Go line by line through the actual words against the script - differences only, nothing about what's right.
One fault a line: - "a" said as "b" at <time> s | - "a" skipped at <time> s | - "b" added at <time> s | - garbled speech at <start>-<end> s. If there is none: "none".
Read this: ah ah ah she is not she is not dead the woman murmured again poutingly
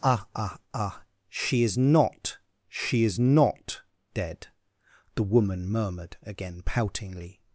none